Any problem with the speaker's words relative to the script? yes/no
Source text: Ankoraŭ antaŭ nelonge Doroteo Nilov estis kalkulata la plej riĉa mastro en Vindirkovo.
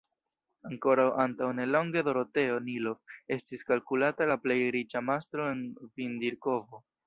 no